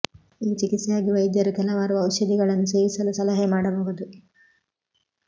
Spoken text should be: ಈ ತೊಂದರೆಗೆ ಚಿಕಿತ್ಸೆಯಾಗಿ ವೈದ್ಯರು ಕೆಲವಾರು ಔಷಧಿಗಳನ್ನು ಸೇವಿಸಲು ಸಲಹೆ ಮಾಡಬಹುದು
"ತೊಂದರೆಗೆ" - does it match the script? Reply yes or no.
no